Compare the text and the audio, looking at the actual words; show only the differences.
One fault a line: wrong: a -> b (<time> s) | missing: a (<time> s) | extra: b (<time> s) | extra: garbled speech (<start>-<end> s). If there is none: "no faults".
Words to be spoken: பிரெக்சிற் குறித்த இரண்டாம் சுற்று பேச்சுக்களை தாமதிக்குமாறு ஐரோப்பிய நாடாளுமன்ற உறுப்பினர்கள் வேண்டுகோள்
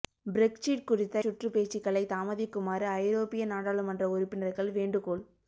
missing: இரண்டாம் (1.2 s)